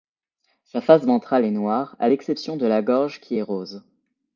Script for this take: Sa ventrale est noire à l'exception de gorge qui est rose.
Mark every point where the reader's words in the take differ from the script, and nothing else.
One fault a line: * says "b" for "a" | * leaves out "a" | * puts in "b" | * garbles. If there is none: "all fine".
* puts in "face"
* puts in "la"